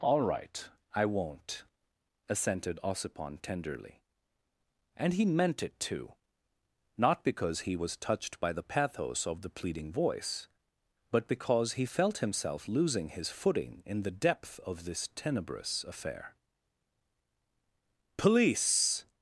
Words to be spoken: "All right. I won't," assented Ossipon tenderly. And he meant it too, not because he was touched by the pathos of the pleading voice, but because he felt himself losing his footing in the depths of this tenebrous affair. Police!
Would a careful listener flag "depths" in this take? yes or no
yes